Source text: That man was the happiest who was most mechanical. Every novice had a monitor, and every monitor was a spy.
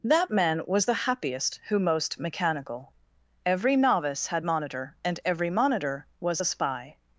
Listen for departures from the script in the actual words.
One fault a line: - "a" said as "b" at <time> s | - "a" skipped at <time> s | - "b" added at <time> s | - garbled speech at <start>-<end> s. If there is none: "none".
- "was" skipped at 1.8 s
- "a" skipped at 4.4 s